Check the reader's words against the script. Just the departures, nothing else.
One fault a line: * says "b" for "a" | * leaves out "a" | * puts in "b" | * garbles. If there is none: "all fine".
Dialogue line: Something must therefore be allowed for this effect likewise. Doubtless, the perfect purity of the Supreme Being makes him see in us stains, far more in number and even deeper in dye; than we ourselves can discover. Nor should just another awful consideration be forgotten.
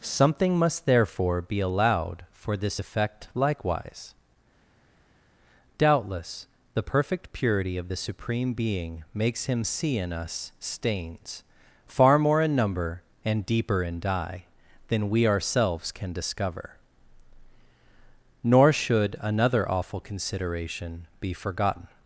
* leaves out "even"
* leaves out "just"